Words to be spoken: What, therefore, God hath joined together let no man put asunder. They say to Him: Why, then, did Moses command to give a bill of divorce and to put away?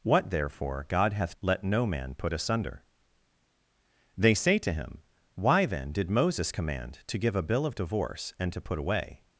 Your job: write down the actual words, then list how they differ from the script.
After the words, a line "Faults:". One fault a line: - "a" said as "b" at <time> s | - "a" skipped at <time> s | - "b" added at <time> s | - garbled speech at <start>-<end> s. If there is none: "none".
What, therefore, God hath let no man put asunder. They say to Him: Why, then, did Moses command to give a bill of divorce and to put away?
Faults:
- "joined together" skipped at 1.4 s